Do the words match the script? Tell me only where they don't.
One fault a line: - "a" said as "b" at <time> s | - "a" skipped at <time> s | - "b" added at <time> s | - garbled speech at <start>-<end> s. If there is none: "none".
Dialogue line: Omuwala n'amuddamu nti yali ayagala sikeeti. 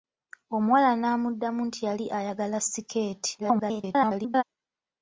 - garbled speech at 3.4-4.4 s